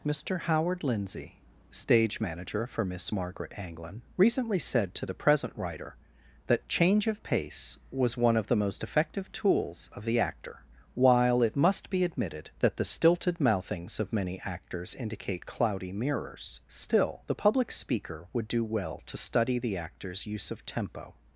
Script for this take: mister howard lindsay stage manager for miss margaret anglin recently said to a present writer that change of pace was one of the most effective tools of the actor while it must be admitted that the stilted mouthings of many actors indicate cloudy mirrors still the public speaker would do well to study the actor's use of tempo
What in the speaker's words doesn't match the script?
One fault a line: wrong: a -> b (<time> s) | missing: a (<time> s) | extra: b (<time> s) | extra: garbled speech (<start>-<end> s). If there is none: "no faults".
wrong: a -> the (5.0 s)